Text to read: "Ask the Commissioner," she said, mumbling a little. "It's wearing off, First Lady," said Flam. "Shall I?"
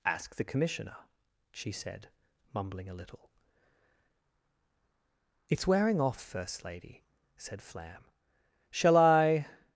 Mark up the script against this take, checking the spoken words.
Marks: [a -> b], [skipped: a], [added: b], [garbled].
"Ask the Commissioner," she said, mumbling a little. "It's wearing off, First Lady," said Flam. "Shall I?"